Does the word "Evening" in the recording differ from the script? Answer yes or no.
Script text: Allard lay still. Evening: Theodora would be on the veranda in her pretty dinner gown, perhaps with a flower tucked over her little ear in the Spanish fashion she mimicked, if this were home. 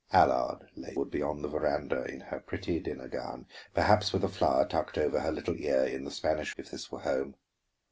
yes